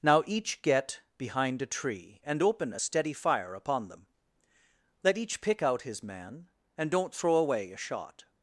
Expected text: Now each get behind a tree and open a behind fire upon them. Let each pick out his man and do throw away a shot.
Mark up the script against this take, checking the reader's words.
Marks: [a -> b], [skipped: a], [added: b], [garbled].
Now each get behind a tree and open a [behind -> steady] fire upon them. Let each pick out his man and [do -> don't] throw away a shot.